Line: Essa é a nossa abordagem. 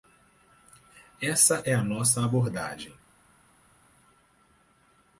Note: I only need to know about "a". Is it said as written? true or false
true